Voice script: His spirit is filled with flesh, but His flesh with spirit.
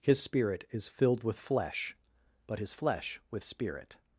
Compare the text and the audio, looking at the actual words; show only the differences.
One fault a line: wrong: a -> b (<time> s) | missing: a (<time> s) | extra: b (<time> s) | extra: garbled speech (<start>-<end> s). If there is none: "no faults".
no faults